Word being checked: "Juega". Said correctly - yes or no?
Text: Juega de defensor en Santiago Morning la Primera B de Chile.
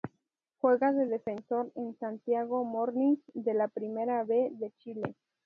yes